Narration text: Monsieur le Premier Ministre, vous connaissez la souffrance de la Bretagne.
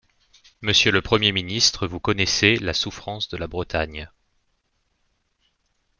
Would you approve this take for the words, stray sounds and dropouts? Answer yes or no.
yes